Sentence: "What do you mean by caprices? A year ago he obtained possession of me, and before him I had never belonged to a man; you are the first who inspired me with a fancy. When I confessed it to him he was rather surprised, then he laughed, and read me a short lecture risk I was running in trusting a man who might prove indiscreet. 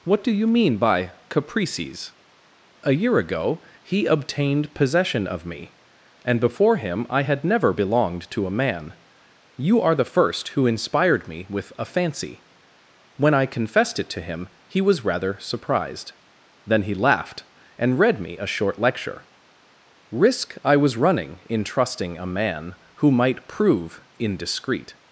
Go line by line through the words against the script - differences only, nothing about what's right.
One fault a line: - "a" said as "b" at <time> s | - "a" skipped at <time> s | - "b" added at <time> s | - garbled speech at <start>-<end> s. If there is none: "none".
none